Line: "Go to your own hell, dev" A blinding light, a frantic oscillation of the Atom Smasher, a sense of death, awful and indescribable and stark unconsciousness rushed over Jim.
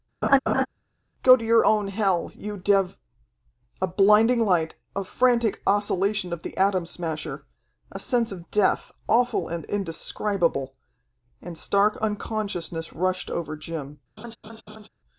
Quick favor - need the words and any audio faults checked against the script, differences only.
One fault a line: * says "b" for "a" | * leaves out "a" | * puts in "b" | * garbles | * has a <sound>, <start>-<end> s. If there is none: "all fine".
* has a laugh, 0.2-0.7 s
* puts in "you"
* has a laugh, 14.2-14.9 s